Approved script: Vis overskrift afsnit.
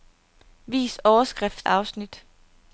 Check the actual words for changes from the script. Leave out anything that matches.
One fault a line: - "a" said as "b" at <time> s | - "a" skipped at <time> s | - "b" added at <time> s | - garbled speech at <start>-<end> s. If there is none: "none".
none